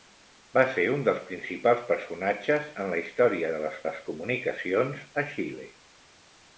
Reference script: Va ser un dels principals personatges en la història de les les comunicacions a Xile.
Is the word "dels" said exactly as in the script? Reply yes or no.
yes